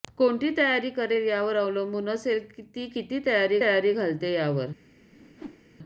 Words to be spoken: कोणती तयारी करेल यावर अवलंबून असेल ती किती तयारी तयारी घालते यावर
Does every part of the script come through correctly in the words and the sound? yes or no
no